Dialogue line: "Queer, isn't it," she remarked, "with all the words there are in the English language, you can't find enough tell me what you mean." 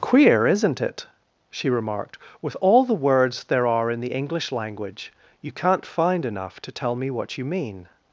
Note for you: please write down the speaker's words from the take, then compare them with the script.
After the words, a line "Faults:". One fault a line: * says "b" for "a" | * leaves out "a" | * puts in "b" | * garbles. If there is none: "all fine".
"Queer, isn't it," she remarked, "with all the words there are in the English language, you can't find enough to tell me what you mean."
Faults:
* puts in "to"